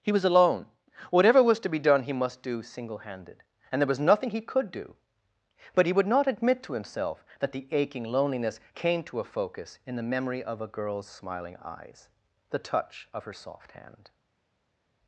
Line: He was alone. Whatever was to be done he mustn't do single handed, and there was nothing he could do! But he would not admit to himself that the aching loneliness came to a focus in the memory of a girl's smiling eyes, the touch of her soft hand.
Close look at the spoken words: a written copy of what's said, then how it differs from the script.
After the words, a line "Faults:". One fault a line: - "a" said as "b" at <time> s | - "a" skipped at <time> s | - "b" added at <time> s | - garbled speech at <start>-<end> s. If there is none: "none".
He was alone. Whatever was to be done he must do single handed, and there was nothing he could do! But he would not admit to himself that the aching loneliness came to a focus in the memory of a girl's smiling eyes, the touch of her soft hand.
Faults:
- "mustn't" said as "must" at 2.1 s